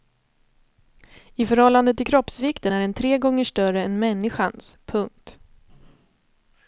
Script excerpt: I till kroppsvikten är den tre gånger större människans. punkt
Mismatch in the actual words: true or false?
true